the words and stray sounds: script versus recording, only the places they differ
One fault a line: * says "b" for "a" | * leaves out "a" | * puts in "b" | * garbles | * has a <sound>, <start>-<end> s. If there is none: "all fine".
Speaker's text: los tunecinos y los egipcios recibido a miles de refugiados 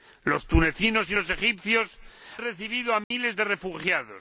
* has a dropout, 3.0-3.1 s